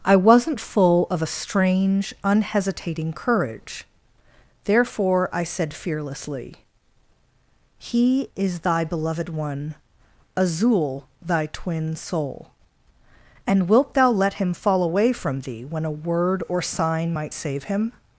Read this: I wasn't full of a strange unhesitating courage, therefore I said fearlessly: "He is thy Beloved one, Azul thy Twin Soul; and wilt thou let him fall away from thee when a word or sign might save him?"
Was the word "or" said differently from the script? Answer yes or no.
no